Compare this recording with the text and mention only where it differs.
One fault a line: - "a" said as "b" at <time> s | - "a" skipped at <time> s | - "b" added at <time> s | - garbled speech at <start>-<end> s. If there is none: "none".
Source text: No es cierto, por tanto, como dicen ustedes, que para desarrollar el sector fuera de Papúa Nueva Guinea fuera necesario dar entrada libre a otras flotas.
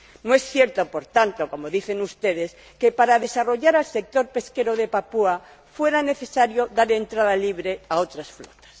- "fuera" said as "pesquero" at 4.3 s